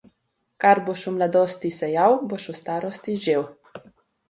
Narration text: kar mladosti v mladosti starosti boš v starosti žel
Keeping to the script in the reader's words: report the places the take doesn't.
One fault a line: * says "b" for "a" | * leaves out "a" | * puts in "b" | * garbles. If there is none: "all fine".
* says "boš" for "mladosti"
* says "sejal" for "starosti"